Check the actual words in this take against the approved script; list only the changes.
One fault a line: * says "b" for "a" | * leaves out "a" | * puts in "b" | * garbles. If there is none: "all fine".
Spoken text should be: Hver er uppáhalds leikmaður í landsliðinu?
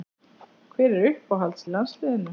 * leaves out "leikmaður"